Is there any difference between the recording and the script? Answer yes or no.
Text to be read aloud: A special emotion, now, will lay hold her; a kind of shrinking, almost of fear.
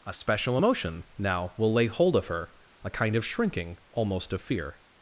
yes